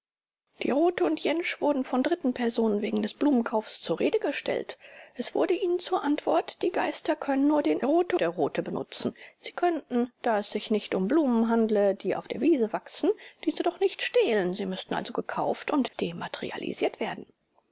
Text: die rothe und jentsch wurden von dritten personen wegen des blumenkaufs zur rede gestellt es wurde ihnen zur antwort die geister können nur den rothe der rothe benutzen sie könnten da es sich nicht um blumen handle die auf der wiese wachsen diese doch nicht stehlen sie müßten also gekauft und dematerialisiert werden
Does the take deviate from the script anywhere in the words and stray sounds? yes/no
yes